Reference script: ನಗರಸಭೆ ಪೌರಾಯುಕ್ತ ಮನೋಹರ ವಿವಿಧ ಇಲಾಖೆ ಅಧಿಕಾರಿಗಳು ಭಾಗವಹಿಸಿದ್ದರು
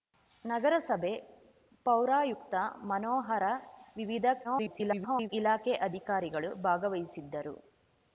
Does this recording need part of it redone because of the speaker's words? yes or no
yes